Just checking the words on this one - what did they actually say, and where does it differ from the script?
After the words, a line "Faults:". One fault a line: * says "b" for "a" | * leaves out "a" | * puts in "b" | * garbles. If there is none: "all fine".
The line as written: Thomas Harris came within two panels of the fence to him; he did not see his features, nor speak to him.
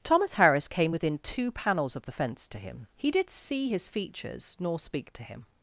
Thomas Harris came within two panels of the fence to him; he did see his features, nor speak to him.
Faults:
* leaves out "not"